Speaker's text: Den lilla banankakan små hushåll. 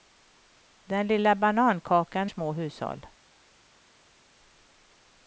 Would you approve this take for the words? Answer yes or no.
yes